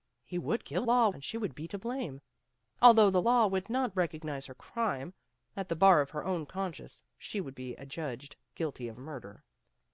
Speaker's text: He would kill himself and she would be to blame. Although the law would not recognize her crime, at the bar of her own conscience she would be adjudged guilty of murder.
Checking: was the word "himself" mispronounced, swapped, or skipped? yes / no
yes